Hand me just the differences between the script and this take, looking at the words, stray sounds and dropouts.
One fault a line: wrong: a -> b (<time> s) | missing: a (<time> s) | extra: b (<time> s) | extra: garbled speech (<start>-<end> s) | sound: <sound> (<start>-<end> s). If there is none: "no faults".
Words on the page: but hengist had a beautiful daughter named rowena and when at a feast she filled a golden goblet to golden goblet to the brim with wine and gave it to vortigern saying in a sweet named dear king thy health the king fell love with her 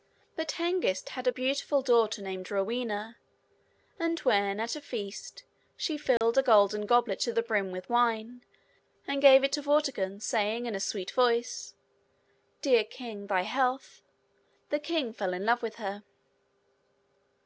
sound: dropout (6.2-6.2 s)
missing: golden goblet to (7.3 s)
wrong: named -> voice (11.1 s)
extra: in (15.3 s)